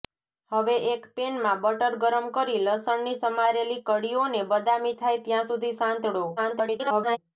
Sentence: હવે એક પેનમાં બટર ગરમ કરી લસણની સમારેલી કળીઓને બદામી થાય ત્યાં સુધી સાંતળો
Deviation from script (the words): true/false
true